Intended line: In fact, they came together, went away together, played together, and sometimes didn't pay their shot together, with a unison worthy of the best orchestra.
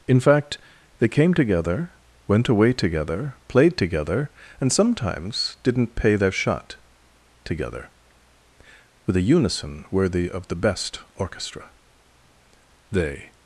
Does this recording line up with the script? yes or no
no